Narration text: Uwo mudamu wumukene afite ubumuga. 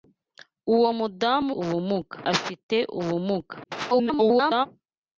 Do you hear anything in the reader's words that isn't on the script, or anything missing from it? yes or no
yes